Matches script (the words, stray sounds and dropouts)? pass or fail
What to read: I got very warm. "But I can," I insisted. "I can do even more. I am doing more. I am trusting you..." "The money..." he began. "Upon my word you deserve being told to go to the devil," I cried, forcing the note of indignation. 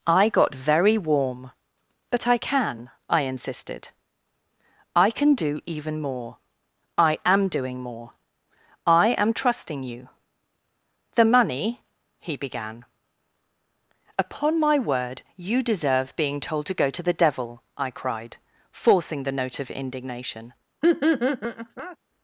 fail